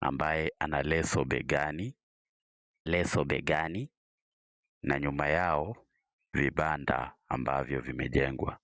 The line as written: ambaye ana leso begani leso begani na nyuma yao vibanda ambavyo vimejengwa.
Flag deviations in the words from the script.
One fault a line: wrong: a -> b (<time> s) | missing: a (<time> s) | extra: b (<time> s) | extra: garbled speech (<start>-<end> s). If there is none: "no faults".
no faults